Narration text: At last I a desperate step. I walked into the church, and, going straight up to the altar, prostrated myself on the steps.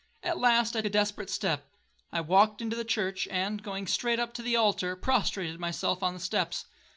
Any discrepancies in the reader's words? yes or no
no